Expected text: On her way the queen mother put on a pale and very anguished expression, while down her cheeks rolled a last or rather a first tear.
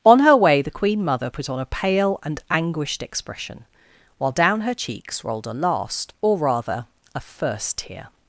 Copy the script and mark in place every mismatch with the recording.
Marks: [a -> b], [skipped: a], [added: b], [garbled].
On her way the queen mother put on a pale and [skipped: very] anguished expression, while down her cheeks rolled a last or rather a first tear.